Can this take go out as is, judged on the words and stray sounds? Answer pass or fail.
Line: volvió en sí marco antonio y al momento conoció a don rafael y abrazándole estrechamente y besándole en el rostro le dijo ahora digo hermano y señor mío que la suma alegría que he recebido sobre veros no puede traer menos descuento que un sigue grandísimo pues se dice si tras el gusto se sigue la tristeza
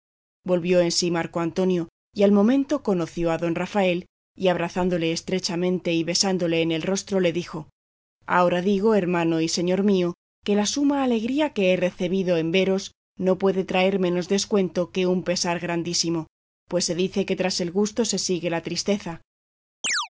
fail